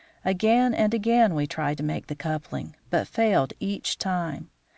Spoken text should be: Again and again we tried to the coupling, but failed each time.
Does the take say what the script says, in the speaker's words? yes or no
no